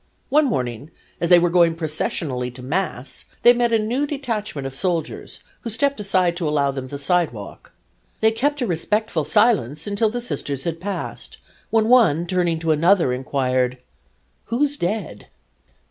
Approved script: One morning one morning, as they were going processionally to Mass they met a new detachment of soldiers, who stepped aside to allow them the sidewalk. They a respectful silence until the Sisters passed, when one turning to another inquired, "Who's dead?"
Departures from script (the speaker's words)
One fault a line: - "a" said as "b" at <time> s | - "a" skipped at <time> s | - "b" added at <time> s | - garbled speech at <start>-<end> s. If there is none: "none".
- "one morning" skipped at 0.9 s
- "kept" added at 8.3 s
- "had" added at 10.7 s